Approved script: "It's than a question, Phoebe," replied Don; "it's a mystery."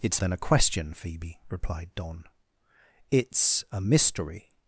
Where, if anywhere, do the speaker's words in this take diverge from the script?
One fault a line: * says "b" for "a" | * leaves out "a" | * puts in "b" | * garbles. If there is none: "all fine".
all fine